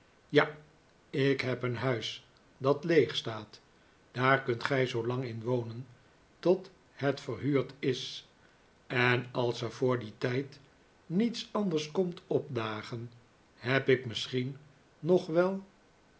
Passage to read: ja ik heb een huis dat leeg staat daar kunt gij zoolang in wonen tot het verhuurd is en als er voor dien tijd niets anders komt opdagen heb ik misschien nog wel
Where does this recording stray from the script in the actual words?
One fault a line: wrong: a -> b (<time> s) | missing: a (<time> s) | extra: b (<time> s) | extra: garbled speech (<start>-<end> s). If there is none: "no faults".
no faults